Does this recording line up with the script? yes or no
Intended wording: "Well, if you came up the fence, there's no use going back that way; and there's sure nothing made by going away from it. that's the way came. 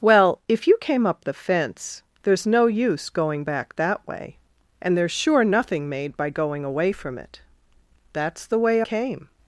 yes